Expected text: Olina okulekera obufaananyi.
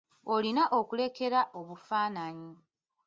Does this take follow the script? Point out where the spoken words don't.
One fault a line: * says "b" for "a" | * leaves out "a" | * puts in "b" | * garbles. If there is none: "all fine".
all fine